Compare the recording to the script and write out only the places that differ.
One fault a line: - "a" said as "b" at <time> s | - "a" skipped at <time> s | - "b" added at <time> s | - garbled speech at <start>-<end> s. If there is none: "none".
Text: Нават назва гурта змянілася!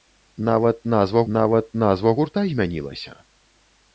- "нават назва" added at 1.4 s